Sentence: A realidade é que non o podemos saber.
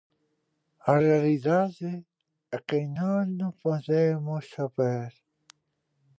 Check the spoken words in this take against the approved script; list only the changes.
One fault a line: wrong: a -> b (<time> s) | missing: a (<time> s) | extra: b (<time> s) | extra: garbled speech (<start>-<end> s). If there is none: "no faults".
no faults